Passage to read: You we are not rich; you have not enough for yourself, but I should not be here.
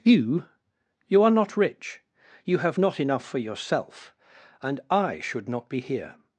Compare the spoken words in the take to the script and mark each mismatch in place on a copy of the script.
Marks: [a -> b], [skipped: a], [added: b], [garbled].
You [we -> you] are not rich; you have not enough for yourself, [but -> and] I should not be here.